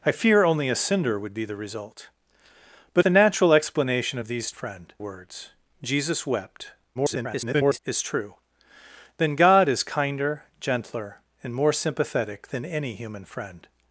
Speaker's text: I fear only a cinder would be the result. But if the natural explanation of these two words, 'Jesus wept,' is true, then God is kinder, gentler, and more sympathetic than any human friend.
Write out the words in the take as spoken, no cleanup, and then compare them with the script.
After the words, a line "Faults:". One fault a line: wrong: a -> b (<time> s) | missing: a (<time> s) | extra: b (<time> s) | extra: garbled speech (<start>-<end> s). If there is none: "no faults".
I fear only a cinder would be the result. But the natural explanation of these friend words, 'Jesus wept,' [garbled] is true, then God is kinder, gentler, and more sympathetic than any human friend.
Faults:
missing: if (3.0 s)
wrong: two -> friend (4.5 s)
extra: garbled speech (6.9-7.8 s)